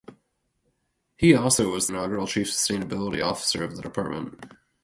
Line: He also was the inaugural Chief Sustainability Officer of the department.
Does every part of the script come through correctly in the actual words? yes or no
no